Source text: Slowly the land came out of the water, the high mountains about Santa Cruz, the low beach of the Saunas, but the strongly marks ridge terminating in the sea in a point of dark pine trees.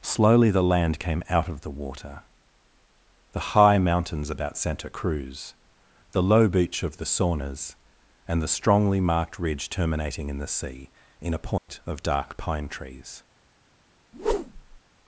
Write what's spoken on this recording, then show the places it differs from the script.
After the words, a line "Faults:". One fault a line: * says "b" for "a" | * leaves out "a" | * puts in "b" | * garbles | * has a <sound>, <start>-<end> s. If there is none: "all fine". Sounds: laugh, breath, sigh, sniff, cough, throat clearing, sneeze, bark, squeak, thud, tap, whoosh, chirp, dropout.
Slowly the land came out of the water, the high mountains about Santa Cruz, the low beach of the Saunas, and the strongly marked ridge terminating in the sea in a point of dark pine trees.
Faults:
* says "and" for "but"
* says "marked" for "marks"
* has a dropout, 11.6-11.7 s
* has a whoosh, 14.1-14.8 s